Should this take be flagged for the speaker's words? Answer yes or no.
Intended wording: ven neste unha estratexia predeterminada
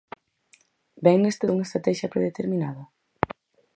no